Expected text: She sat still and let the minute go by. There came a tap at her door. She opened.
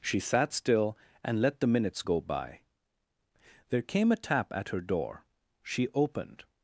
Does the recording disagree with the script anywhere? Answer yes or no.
yes